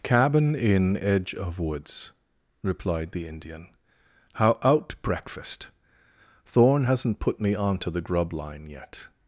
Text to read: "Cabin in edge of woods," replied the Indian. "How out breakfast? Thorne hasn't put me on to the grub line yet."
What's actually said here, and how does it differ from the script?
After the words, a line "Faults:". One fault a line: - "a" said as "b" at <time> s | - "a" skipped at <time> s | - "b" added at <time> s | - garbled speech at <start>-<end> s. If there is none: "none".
"Cabin in edge of woods," replied the Indian. "How out breakfast? Thorne hasn't put me on to the grub line yet."
Faults:
none